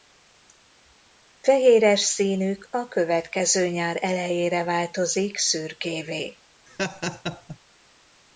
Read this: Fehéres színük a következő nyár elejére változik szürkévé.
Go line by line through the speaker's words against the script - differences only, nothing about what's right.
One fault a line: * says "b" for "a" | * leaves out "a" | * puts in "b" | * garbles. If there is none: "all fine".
all fine